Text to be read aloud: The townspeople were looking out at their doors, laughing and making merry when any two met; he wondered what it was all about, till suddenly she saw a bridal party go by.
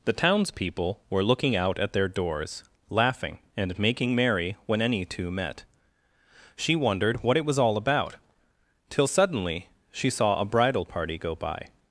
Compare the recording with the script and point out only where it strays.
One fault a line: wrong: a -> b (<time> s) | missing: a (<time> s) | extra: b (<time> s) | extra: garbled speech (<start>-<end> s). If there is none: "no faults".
wrong: he -> she (6.5 s)